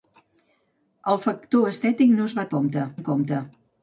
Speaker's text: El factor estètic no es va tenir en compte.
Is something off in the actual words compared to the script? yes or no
yes